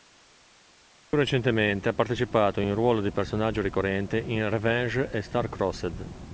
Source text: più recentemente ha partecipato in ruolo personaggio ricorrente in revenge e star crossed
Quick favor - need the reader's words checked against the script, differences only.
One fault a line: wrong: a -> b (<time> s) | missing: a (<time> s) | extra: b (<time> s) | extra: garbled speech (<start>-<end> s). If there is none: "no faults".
extra: di (3.0 s)